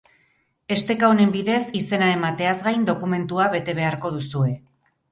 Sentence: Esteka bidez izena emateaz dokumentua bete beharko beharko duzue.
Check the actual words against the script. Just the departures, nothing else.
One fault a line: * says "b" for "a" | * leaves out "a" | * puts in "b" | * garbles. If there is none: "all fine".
* puts in "honen"
* puts in "gain"
* leaves out "beharko"